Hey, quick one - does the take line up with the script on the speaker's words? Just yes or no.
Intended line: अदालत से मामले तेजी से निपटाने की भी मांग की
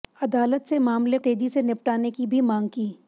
yes